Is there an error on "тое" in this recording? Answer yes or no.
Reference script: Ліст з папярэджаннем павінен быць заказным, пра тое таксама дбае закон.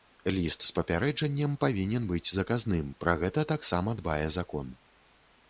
yes